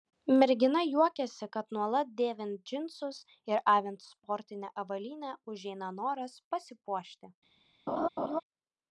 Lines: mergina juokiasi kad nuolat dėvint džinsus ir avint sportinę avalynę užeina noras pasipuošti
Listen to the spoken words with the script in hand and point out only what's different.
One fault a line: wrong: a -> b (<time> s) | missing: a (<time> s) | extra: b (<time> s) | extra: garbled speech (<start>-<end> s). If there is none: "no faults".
no faults